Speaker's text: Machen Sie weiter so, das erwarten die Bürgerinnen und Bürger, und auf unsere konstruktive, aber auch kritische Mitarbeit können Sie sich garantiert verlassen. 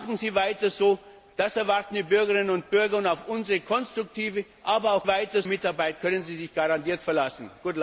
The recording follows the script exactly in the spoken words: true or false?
false